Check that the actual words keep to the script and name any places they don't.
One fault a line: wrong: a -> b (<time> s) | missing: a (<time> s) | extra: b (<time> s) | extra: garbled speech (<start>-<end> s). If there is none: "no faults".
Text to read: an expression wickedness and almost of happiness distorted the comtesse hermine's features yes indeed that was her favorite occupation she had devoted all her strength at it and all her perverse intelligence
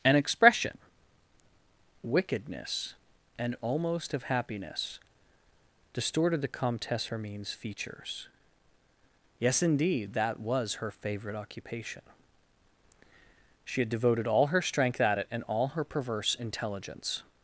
no faults